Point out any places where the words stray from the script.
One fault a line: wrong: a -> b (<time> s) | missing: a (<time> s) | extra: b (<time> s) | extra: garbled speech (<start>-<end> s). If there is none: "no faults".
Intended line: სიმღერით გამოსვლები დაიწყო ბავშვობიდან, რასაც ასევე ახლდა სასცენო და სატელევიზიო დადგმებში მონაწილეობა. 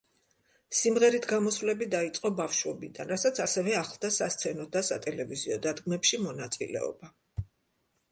no faults